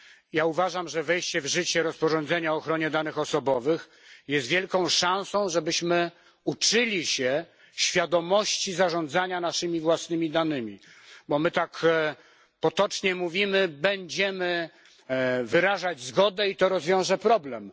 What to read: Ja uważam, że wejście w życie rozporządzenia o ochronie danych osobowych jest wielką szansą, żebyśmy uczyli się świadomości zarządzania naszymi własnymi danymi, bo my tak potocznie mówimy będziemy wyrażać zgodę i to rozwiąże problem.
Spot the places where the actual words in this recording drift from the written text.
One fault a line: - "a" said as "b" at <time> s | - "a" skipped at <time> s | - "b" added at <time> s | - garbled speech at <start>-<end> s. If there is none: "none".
none